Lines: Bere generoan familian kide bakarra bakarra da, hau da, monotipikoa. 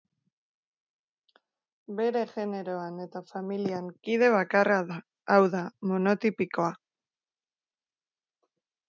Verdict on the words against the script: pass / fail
fail